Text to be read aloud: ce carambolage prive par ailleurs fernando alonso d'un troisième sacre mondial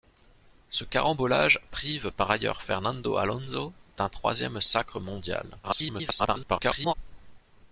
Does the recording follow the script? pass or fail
fail